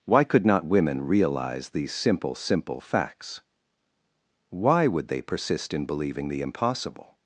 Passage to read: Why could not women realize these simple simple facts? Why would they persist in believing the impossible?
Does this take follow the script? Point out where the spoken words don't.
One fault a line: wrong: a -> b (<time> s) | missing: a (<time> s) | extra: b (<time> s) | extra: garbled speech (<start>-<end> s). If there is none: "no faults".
no faults